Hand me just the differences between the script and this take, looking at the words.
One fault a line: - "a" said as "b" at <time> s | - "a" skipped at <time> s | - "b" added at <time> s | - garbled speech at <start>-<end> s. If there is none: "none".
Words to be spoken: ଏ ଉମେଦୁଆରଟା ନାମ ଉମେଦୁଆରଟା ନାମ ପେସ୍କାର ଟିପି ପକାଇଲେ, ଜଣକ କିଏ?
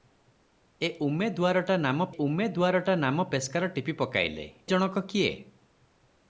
none